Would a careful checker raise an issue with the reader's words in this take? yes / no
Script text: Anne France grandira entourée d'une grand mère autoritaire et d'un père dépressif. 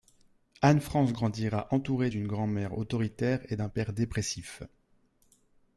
no